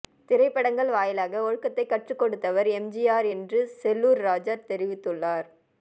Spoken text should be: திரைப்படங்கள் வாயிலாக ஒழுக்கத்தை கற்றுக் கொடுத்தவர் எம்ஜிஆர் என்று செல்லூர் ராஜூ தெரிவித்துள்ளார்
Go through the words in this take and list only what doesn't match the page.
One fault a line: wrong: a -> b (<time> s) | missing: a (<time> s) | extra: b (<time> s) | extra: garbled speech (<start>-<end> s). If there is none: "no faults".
no faults